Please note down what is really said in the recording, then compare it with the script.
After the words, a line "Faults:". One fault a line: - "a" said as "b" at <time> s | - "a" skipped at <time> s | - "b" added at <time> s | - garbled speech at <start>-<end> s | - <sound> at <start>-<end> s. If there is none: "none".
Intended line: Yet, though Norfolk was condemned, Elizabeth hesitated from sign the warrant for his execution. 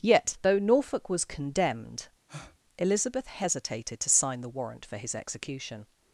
Yet, though Norfolk was condemned, Elizabeth hesitated to sign the warrant for his execution.
Faults:
- breath at 2.3-2.6 s
- "from" said as "to" at 4.0 s